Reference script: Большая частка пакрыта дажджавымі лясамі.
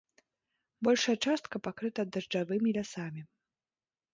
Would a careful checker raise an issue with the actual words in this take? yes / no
no